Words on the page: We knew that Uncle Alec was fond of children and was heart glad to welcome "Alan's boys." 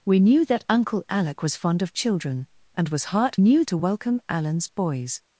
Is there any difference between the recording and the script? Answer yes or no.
yes